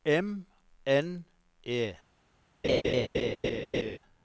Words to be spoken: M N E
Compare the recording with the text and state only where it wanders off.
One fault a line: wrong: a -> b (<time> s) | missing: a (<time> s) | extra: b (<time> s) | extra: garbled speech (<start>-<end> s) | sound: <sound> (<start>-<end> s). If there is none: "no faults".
sound: laugh (2.6-4.0 s)